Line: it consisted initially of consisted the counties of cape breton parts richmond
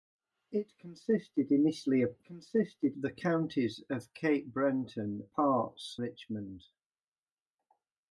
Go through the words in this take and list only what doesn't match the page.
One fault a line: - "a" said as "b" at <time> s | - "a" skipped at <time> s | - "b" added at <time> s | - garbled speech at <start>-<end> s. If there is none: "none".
none